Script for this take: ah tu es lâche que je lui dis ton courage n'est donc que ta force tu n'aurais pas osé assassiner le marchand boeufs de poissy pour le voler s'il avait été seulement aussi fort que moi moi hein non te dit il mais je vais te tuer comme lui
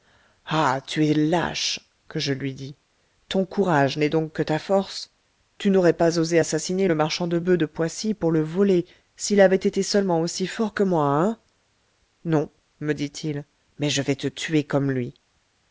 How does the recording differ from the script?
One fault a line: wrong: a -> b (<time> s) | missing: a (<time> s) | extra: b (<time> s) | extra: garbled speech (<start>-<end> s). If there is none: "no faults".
extra: de (7.3 s)
missing: moi (11.1 s)
wrong: te -> me (12.8 s)